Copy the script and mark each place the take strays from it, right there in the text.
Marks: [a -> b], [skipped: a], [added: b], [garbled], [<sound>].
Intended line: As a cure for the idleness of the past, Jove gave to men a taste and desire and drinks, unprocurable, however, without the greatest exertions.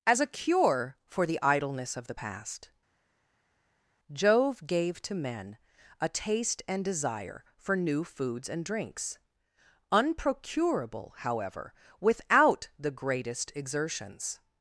As a cure for the idleness of the past, Jove gave to men a taste and desire [added: for new foods] and drinks, unprocurable, however, without the greatest exertions.